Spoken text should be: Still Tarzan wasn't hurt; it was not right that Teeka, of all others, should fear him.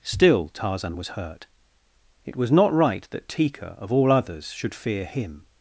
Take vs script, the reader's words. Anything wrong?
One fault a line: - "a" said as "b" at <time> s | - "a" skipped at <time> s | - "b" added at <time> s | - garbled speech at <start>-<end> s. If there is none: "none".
- "wasn't" said as "was" at 0.9 s